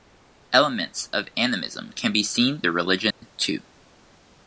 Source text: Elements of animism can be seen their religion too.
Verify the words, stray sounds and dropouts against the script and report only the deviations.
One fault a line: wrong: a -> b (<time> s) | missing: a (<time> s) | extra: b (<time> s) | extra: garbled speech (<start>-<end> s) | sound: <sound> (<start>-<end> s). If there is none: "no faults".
sound: dropout (3.1-3.2 s)